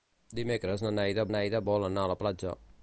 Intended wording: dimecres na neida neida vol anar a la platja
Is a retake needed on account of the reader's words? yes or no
no